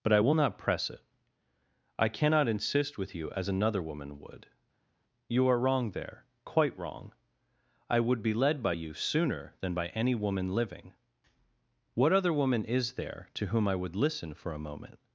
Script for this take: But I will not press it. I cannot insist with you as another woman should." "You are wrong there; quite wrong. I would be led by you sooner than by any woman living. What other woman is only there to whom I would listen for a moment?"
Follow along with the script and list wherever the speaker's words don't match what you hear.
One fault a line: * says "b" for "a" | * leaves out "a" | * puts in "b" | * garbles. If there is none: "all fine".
* says "would" for "should"
* leaves out "only"